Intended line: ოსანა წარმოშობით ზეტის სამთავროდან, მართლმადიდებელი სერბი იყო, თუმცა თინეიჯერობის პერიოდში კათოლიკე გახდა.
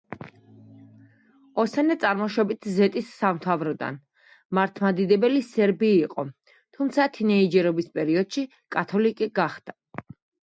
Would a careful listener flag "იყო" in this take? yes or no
no